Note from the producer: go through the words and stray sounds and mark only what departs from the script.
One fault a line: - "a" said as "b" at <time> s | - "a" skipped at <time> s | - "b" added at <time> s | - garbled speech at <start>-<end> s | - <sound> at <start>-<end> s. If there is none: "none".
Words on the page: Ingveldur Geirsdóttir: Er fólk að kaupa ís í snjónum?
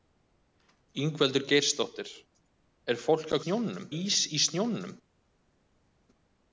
- "kaupa" said as "snjónum" at 3.4 s